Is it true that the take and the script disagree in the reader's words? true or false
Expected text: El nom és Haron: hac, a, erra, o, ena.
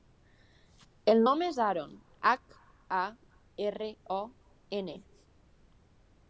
false